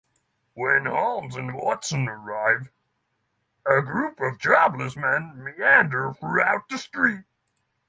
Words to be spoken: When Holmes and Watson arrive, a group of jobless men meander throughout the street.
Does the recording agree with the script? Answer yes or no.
yes